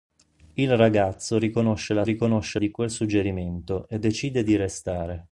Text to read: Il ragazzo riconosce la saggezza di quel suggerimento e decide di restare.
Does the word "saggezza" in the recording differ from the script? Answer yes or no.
yes